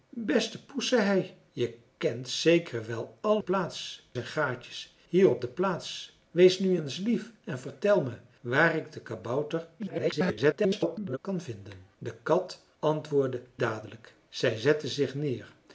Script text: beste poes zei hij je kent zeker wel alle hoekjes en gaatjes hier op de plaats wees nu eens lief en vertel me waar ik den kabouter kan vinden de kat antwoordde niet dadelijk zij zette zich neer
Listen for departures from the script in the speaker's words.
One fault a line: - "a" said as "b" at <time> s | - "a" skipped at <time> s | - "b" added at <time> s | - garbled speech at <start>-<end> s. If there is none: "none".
- "hoekjes" said as "plaats" at 3.4 s
- garbled speech at 9.8-11.2 s
- "niet" skipped at 13.4 s